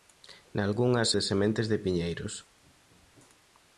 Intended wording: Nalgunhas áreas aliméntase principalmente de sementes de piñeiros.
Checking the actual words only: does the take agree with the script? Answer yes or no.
no